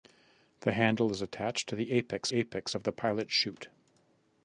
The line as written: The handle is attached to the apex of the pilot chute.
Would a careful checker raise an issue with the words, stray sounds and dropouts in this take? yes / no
yes